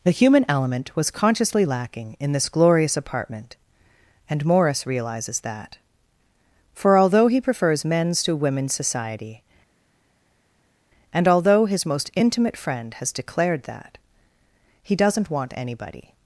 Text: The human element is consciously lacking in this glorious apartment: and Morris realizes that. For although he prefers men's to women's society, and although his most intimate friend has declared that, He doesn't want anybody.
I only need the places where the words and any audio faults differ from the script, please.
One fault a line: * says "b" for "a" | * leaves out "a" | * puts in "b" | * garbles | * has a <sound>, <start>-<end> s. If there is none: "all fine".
* says "was" for "is"